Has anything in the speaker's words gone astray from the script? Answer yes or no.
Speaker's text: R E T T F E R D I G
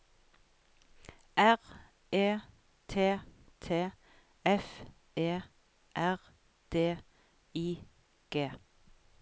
no